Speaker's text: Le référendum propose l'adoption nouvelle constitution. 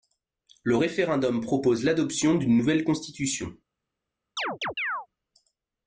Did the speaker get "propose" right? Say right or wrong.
right